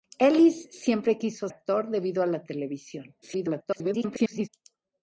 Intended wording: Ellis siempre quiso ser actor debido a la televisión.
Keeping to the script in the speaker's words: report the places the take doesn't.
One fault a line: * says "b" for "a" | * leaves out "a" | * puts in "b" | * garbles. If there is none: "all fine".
* leaves out "ser"
* garbles